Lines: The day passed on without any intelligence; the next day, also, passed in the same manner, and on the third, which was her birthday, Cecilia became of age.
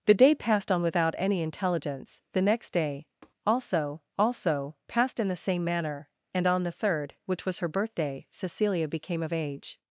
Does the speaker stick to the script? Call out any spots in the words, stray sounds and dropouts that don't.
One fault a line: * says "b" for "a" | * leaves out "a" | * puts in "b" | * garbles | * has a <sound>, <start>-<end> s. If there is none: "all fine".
* has a tap, 3.2-3.3 s
* puts in "also"